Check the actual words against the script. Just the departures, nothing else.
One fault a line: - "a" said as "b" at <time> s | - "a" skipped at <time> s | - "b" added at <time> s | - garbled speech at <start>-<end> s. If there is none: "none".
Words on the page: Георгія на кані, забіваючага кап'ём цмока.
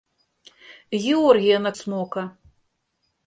- "кані забіваючага кап'ём" skipped at 1.7 s